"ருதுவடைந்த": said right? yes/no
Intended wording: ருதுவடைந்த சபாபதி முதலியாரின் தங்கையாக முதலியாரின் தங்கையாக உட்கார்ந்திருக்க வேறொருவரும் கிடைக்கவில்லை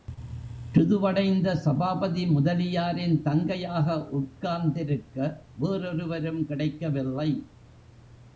yes